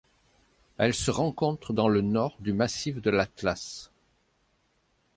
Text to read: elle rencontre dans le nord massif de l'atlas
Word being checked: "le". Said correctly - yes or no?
yes